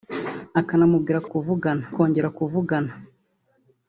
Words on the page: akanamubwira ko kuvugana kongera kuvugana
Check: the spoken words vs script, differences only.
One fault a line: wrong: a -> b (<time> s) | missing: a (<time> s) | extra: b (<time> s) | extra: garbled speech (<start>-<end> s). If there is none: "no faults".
no faults